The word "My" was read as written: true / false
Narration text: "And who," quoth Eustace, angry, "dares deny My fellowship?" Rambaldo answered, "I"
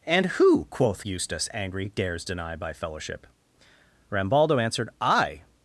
false